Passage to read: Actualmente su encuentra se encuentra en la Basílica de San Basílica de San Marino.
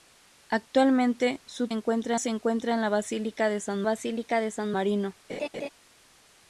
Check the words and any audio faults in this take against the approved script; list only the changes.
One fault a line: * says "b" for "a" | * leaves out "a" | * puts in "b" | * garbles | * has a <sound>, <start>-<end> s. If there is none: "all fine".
* has a laugh, 5.3-5.7 s